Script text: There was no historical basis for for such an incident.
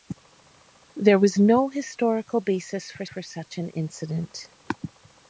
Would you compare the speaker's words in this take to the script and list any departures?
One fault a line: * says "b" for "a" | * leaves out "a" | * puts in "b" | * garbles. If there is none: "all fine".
all fine